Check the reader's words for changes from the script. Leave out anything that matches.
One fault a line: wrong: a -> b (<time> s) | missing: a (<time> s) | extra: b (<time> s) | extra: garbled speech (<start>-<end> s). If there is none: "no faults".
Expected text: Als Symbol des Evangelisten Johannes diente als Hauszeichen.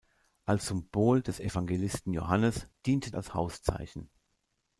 no faults